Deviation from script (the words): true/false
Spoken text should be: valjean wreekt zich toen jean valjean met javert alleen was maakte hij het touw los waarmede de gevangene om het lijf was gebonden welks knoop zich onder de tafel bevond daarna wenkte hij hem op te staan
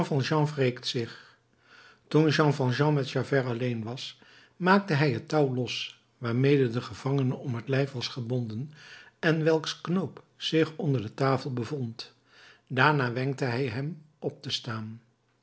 true